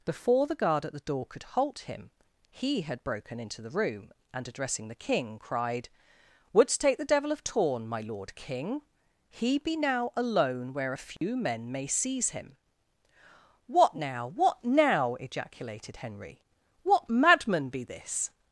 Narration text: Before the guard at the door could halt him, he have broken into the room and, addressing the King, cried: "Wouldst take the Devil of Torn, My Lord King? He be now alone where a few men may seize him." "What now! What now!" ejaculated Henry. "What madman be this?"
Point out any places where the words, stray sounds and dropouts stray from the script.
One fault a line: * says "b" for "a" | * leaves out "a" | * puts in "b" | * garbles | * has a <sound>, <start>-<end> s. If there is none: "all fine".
* says "had" for "have"
* has a dropout, 11.2-11.2 s